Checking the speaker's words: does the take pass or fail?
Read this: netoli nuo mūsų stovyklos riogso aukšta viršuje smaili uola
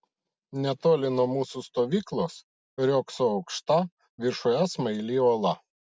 pass